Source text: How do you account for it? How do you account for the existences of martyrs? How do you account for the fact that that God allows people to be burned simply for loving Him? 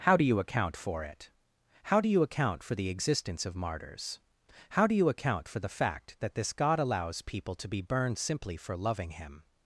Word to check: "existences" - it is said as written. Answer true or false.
false